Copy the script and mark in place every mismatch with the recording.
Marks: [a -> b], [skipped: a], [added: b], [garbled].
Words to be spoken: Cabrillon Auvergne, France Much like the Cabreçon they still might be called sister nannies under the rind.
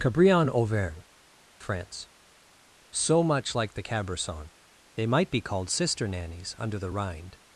Cabrillon Auvergne, France [added: So] Much like the Cabreçon they [skipped: still] might be called sister nannies under the rind.